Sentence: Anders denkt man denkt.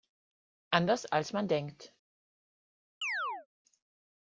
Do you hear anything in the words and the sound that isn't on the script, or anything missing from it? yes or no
yes